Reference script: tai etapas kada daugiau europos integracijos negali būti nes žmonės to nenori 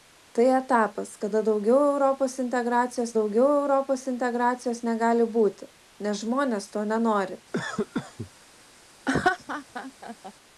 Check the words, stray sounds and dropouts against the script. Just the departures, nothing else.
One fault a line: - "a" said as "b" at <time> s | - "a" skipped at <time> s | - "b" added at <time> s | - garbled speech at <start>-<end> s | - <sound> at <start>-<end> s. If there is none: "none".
- "daugiau europos integracijos" added at 3.2 s
- cough at 7.5-8.3 s
- laugh at 9.1-10.3 s